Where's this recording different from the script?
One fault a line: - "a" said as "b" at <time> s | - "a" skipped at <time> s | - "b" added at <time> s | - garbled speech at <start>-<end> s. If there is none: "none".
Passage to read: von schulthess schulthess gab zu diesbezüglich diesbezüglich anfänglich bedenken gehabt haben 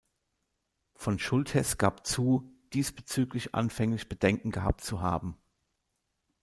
- "schulthess" skipped at 1.8 s
- "diesbezüglich" skipped at 3.5 s
- "zu" added at 4.8 s